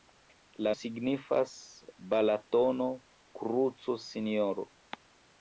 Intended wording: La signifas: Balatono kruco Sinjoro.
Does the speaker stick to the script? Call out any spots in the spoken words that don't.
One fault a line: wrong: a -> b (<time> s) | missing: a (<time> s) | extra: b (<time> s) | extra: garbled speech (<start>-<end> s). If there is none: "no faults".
no faults